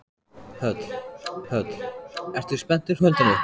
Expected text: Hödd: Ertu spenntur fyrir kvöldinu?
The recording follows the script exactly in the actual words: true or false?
false